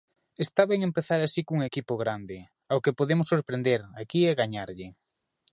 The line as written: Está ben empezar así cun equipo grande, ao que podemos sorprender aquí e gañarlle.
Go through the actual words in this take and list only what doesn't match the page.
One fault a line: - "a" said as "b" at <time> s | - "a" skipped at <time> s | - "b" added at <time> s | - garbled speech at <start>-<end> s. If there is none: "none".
none